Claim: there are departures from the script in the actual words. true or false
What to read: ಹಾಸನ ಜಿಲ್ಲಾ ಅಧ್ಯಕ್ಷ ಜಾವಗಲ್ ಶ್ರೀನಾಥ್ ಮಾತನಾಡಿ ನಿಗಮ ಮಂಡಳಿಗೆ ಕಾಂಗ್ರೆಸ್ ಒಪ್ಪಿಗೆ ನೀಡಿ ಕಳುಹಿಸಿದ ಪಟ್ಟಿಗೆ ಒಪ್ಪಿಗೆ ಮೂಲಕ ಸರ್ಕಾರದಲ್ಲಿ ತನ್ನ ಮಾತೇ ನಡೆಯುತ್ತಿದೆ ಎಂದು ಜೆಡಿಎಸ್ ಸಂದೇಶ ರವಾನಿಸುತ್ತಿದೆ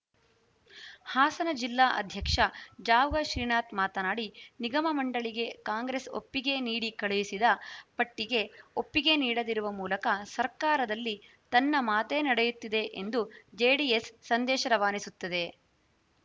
true